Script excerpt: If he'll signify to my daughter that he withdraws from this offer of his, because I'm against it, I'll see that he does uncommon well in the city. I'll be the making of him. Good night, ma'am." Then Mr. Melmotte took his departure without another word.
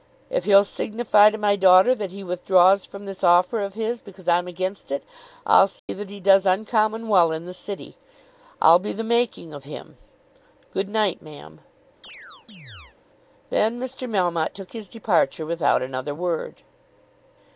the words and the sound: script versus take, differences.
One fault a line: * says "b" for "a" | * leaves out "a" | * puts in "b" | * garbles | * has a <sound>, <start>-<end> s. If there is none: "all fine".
* has a dropout, 5.8-5.9 s
* has a chirp, 12.0-13.0 s